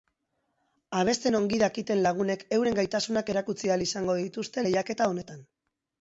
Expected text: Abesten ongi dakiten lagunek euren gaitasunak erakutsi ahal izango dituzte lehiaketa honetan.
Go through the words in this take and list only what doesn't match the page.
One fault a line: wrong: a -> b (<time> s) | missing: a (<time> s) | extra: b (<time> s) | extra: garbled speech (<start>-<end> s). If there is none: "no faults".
no faults